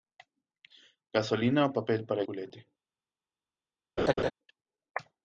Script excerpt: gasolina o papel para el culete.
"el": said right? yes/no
no